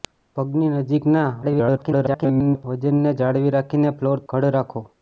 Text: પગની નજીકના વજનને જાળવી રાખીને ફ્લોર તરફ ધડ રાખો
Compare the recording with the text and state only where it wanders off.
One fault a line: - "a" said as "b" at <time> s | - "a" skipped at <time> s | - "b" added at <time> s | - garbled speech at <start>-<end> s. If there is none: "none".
- garbled speech at 1.4-2.6 s
- "તરફ" skipped at 4.3 s